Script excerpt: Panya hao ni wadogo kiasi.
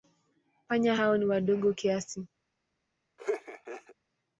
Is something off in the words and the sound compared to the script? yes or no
yes